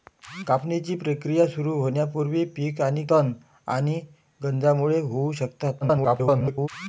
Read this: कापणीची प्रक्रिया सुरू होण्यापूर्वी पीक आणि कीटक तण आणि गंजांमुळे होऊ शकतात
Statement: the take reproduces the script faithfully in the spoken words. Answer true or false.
false